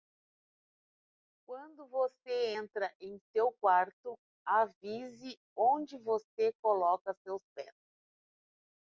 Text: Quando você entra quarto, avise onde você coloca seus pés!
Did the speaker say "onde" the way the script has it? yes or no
yes